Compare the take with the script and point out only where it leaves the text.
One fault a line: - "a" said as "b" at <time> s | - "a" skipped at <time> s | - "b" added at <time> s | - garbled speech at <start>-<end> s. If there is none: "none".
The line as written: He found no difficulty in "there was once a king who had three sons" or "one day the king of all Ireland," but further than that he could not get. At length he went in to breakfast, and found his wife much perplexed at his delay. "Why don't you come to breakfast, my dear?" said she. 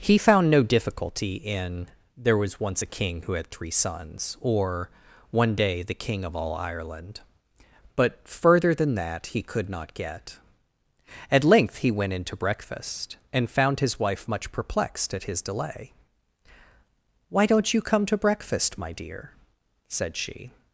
none